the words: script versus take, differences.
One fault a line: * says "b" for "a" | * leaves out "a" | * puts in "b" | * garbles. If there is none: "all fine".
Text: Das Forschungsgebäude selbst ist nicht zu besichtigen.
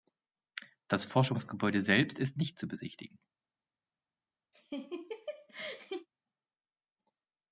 all fine